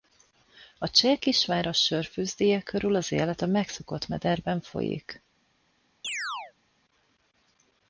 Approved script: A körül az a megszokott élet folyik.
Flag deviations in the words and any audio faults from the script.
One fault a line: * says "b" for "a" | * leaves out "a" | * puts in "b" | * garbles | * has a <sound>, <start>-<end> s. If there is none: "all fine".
* puts in "cseh kisváros sörfőzdéje"
* puts in "élet"
* says "mederben" for "élet"
* has a chirp, 6.0-6.5 s